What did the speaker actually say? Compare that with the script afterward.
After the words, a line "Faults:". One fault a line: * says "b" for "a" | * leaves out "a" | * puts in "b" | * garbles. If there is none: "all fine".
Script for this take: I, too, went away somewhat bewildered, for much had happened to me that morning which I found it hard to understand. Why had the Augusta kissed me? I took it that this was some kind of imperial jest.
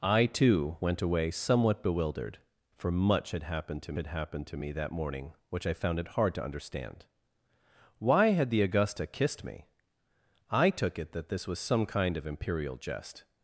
I, too, went away somewhat bewildered, for much had happened to had happened to me that morning which I found it hard to understand. Why had the Augusta kissed me? I took it that this was some kind of imperial jest.
Faults:
* puts in "had happened to"